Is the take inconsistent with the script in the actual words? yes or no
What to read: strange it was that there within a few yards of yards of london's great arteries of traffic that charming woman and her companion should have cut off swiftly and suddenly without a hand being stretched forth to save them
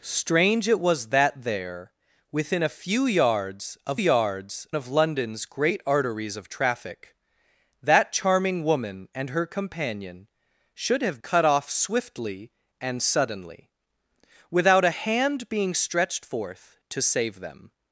no